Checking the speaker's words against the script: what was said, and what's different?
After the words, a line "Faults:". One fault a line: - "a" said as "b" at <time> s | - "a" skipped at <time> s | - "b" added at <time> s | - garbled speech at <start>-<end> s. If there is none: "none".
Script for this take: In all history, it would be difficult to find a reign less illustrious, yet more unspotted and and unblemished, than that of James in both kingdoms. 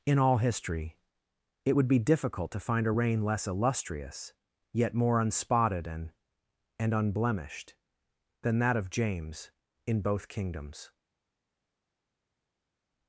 In all history, it would be difficult to find a reign less illustrious, yet more unspotted and and unblemished, than that of James in both kingdoms.
Faults:
none